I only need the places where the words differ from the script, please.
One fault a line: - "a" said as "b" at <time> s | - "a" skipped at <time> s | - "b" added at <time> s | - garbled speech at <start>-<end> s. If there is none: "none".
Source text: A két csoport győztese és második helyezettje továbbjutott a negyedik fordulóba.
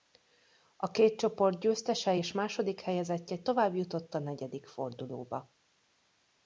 none